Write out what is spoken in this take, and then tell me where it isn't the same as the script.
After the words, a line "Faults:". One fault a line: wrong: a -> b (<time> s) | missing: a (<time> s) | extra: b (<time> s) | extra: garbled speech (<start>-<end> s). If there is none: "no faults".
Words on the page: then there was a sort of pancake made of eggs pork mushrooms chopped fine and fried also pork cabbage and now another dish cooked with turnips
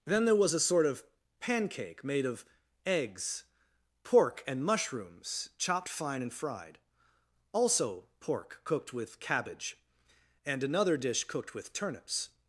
then there was a sort of pancake made of eggs pork and mushrooms chopped fine and fried also pork cooked with cabbage and another dish cooked with turnips
Faults:
extra: and (4.5 s)
extra: cooked with (8.6 s)
missing: now (10.6 s)